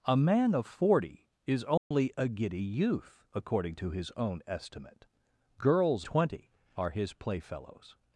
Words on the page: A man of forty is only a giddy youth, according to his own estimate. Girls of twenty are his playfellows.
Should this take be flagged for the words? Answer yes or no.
yes